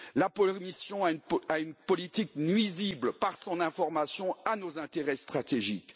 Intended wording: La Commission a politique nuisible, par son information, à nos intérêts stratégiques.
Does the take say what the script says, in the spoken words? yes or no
no